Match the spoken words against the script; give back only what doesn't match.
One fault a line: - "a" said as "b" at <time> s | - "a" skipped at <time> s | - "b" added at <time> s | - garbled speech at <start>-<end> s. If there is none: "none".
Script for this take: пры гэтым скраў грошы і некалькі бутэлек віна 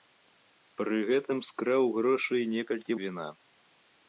- "бутэлек" skipped at 3.0 s